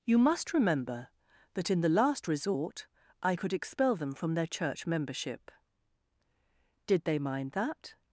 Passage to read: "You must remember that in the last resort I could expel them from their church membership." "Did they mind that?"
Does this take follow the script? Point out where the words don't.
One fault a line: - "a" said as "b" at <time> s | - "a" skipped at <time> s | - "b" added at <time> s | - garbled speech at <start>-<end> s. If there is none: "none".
none